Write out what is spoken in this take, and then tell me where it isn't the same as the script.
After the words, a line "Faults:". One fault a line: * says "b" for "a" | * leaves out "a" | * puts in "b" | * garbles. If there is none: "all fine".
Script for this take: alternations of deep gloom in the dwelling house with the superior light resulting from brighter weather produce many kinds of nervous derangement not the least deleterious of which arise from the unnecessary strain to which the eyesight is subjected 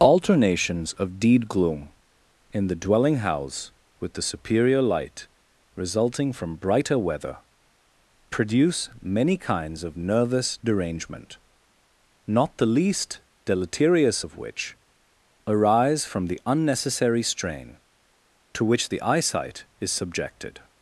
alternations of deed gloom in the dwelling house with the superior light resulting from brighter weather produce many kinds of nervous derangement not the least deleterious of which arise from the unnecessary strain to which the eyesight is subjected
Faults:
* says "deed" for "deep"